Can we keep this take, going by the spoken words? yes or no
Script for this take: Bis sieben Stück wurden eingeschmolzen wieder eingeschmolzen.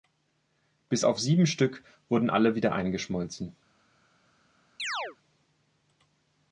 no